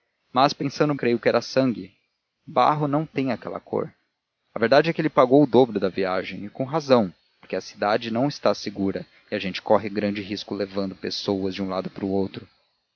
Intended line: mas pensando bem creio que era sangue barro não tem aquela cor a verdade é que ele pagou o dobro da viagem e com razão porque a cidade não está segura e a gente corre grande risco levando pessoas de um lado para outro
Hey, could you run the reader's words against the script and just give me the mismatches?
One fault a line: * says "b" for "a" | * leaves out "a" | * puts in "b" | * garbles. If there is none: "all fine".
* leaves out "bem"